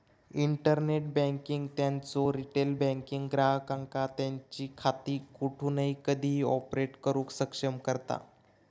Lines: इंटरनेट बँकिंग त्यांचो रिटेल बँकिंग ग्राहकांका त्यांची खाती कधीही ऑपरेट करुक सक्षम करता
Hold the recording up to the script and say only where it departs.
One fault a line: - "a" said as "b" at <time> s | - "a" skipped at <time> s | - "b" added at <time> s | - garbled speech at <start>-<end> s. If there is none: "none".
- "कोठूनही" added at 5.4 s